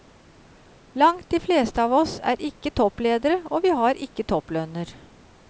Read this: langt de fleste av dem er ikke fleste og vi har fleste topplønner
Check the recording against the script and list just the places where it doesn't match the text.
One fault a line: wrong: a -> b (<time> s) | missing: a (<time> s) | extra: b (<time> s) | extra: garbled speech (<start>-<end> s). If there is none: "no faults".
wrong: dem -> oss (2.0 s)
wrong: fleste -> toppledere (2.8 s)
wrong: fleste -> ikke (4.1 s)